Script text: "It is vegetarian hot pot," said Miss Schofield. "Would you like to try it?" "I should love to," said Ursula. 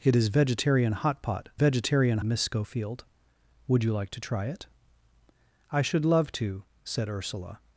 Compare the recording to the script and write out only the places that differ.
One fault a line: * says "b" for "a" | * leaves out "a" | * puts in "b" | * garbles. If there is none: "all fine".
* says "vegetarian" for "said"